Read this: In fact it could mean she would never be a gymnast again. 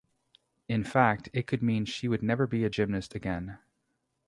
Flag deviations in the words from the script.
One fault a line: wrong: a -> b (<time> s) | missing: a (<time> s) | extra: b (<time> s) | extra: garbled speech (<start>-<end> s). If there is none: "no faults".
no faults